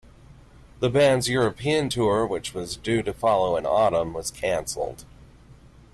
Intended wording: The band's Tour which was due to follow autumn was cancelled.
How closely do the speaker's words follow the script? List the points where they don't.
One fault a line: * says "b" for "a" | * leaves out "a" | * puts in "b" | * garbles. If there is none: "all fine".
* puts in "European"
* puts in "in"